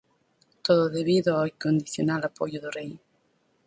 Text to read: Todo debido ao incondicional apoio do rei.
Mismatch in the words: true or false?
false